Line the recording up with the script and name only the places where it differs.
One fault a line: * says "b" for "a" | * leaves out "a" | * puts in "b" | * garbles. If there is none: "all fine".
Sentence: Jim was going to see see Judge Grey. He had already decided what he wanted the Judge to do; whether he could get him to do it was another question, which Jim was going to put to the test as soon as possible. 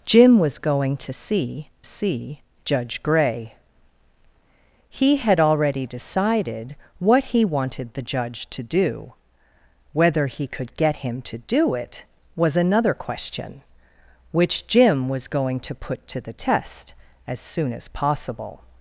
all fine